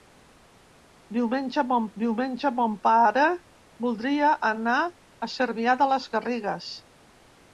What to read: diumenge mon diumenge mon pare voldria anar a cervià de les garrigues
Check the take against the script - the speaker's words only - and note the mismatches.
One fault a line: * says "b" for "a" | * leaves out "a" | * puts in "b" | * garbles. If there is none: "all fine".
all fine